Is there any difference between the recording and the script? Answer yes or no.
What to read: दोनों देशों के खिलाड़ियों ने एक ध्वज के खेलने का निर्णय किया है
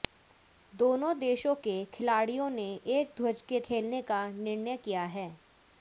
no